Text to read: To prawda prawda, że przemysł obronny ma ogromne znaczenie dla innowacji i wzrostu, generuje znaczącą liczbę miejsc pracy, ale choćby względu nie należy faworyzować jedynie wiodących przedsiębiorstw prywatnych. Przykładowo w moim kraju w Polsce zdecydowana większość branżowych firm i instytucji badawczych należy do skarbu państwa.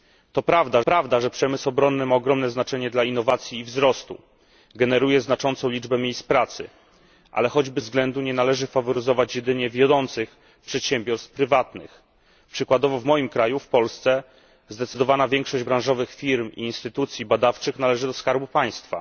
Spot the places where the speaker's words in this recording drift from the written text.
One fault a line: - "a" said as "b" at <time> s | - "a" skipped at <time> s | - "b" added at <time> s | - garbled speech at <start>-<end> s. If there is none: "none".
none